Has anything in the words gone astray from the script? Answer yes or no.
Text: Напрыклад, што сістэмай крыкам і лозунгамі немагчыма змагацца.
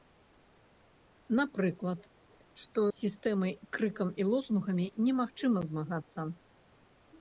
no